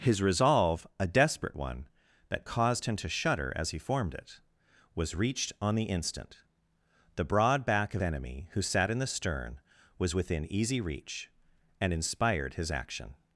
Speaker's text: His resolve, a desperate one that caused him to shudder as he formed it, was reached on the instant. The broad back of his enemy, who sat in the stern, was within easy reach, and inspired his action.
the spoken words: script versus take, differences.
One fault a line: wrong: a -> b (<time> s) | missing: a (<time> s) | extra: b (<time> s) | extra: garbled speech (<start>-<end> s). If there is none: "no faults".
missing: his (8.0 s)